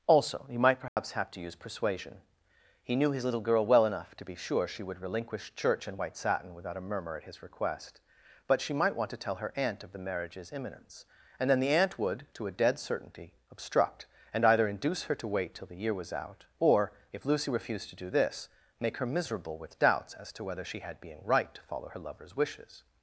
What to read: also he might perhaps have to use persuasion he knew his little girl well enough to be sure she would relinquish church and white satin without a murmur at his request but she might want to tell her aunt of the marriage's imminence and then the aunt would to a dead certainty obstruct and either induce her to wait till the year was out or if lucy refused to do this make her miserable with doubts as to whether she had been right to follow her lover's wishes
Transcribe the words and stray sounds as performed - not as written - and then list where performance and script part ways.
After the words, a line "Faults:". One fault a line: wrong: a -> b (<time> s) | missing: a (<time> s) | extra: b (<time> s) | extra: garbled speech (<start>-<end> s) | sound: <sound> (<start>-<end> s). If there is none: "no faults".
also he might perhaps have to use persuasion he knew his little girl well enough to be sure she would relinquish church and white satin without a murmur at his request but she might want to tell her aunt of the marriage's imminence and then the aunt would to a dead certainty obstruct and either induce her to wait till the year was out or if lucy refused to do this make her miserable with doubts as to whether she had being right to follow her lover's wishes
Faults:
sound: dropout (0.9-1.0 s)
wrong: been -> being (21.0 s)